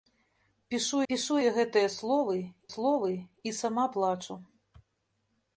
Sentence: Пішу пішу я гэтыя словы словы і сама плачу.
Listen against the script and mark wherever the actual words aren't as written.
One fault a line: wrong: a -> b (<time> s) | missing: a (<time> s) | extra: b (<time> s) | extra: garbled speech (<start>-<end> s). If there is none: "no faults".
no faults